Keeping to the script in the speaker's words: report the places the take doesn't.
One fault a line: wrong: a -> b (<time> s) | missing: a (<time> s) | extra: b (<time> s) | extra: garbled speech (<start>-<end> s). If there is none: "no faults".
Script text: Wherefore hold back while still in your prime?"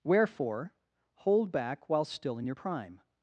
no faults